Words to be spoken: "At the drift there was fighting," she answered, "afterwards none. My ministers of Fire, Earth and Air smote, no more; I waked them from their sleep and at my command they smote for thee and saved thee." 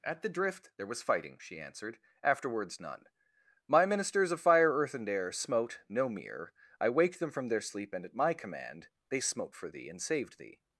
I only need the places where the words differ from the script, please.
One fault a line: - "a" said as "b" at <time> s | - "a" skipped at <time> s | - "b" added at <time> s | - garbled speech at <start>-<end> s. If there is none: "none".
- "more" said as "mere" at 6.1 s